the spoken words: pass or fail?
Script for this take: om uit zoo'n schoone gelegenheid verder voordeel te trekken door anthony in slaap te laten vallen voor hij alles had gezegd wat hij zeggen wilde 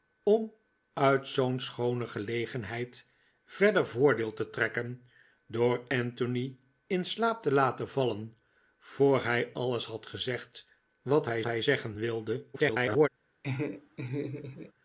fail